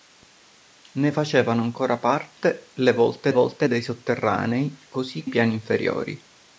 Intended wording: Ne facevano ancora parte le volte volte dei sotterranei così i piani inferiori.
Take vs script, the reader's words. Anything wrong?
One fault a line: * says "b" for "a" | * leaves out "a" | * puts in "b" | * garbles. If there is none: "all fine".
all fine